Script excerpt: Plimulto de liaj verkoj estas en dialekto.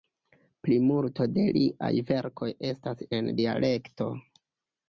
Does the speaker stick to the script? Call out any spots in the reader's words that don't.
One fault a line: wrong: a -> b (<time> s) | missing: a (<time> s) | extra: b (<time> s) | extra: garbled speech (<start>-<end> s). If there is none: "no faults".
no faults